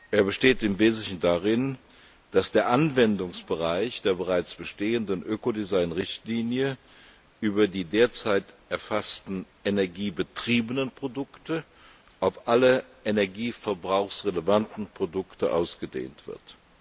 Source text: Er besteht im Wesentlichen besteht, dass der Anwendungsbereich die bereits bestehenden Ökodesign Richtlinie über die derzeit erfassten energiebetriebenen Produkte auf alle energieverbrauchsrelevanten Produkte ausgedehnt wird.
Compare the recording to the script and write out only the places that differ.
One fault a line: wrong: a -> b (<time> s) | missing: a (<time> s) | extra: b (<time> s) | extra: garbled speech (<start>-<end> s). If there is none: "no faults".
wrong: besteht -> darin (1.2 s)
wrong: die -> der (4.0 s)